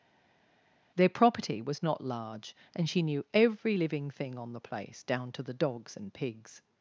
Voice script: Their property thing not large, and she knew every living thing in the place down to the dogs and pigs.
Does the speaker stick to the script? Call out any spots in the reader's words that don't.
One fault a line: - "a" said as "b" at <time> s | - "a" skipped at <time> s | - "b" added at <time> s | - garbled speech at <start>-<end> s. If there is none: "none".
- "thing" said as "was" at 1.6 s
- "in" said as "on" at 4.4 s